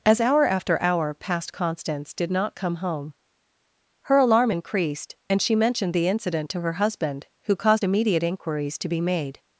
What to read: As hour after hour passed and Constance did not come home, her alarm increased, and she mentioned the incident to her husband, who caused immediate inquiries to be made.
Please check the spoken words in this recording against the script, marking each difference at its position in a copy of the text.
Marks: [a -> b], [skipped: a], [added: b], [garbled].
As hour after hour passed [skipped: and] Constance did not come home, her alarm increased, and she mentioned the incident to her husband, who caused immediate inquiries to be made.